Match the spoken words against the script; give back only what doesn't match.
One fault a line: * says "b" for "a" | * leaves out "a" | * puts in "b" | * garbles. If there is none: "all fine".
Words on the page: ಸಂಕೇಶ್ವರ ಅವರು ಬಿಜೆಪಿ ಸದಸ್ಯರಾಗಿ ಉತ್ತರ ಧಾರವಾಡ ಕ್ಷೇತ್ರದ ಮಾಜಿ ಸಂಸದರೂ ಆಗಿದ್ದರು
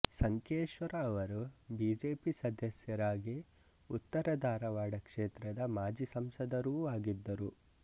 all fine